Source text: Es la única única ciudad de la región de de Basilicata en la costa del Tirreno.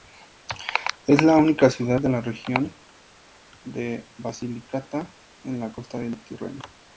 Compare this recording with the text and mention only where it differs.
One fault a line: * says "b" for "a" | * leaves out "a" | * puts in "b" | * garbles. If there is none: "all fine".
* leaves out "única"
* leaves out "de"